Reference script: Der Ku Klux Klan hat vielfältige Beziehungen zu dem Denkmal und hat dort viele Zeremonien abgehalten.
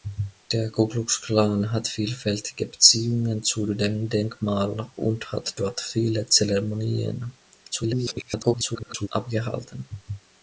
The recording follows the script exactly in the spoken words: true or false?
false